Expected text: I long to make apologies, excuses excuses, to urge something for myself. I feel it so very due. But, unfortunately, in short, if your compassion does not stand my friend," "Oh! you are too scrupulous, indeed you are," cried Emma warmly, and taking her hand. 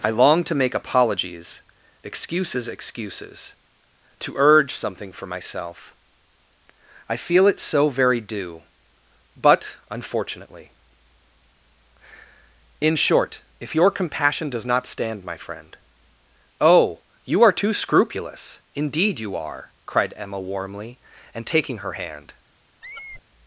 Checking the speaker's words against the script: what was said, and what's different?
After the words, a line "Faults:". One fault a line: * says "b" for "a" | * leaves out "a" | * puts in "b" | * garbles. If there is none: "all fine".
I long to make apologies, excuses excuses, to urge something for myself. I feel it so very due. But, unfortunately, in short, if your compassion does not stand my friend," "Oh! you are too scrupulous, indeed you are," cried Emma warmly, and taking her hand.
Faults:
all fine